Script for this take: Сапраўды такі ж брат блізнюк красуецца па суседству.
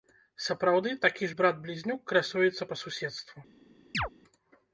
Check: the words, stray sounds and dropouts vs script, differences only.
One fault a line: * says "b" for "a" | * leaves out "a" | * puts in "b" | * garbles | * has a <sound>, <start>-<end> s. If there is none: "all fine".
* has a chirp, 3.9-4.1 s